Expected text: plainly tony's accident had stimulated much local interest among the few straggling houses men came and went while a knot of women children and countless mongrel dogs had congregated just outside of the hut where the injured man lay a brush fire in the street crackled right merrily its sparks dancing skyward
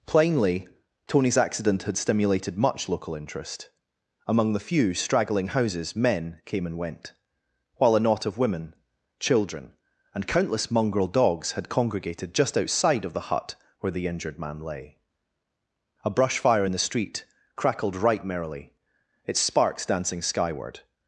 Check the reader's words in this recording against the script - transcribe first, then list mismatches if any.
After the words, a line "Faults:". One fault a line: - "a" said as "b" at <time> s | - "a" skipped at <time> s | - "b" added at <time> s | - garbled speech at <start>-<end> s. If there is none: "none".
plainly tony's accident had stimulated much local interest among the few straggling houses men came and went while a knot of women children and countless mongrel dogs had congregated just outside of the hut where the injured man lay a brush fire in the street crackled right merrily its sparks dancing skyward
Faults:
none